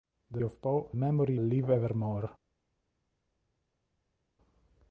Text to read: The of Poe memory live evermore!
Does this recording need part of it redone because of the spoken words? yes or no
no